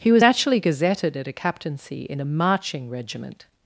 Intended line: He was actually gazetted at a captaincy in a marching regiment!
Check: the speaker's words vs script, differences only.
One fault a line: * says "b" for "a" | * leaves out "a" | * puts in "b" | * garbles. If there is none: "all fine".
all fine